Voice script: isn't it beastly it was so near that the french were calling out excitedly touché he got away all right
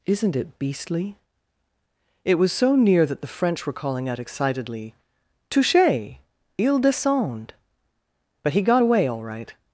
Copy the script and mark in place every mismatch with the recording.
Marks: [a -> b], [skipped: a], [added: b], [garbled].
isn't it beastly it was so near that the french were calling out excitedly touché [added: il descend but] he got away all right